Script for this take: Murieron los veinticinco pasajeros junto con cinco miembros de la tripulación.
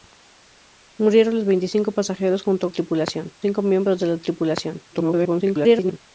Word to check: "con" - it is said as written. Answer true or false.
false